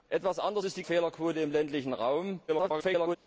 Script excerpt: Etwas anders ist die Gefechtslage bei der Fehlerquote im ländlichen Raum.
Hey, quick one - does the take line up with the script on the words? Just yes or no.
no